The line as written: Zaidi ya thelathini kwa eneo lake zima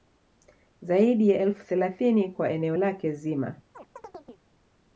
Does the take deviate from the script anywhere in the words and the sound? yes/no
yes